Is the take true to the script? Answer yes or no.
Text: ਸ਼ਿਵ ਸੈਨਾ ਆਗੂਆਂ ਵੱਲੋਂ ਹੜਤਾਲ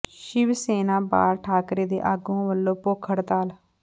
no